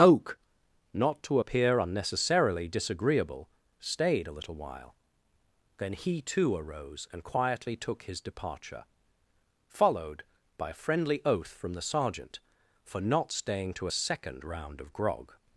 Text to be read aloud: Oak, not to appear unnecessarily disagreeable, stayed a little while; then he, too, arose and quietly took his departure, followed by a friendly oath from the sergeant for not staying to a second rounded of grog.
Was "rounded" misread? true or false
true